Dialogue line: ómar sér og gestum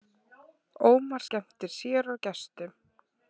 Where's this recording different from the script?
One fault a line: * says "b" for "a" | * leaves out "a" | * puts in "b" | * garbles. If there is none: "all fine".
* puts in "skemmtir"